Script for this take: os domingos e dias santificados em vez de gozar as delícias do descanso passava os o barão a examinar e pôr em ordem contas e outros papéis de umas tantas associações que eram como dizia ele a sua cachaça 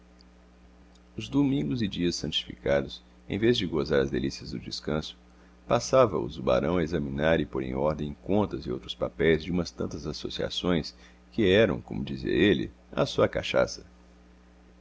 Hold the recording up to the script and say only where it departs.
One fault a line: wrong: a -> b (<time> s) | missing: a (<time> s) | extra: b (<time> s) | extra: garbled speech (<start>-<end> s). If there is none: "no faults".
no faults